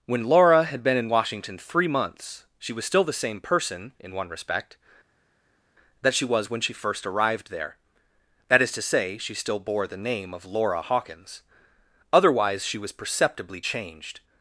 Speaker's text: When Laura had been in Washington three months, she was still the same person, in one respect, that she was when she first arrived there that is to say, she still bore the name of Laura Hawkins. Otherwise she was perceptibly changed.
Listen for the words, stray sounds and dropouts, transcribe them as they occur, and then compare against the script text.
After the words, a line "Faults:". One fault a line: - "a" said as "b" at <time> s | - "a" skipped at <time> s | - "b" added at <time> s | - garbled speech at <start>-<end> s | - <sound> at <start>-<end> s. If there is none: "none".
When Laura had been in Washington three months, she was still the same person, in one respect, that she was when she first arrived there that is to say, she still bore the name of Laura Hawkins. Otherwise she was perceptibly changed.
Faults:
none